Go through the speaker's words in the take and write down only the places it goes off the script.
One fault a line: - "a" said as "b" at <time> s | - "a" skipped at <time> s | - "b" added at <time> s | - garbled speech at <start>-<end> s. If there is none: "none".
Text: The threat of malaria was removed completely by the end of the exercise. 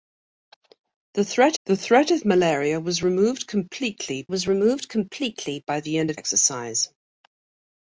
- "the threat" added at 1.6 s
- "was removed completely" added at 4.3 s
- "the" skipped at 6.2 s